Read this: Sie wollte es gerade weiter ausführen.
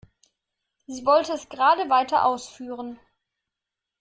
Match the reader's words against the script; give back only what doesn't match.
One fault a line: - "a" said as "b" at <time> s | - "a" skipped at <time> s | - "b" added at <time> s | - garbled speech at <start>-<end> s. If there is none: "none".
none